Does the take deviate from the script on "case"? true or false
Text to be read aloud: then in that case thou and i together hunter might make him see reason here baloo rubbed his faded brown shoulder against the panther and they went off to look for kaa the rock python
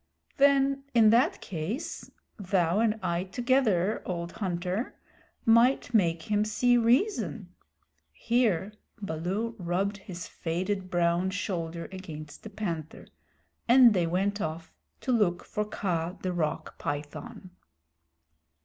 false